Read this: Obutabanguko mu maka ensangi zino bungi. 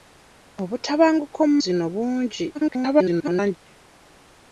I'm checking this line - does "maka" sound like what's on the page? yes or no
no